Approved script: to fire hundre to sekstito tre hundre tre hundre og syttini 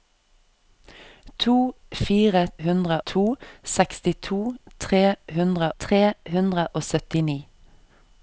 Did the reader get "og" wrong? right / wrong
right